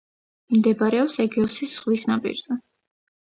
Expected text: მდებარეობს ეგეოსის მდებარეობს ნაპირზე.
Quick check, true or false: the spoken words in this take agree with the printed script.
false